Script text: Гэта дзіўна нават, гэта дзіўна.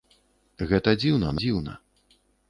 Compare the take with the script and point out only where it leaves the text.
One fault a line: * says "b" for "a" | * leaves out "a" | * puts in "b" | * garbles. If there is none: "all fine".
* leaves out "нават гэта"